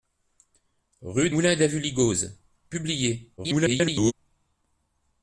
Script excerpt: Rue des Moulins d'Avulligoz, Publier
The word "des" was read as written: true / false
false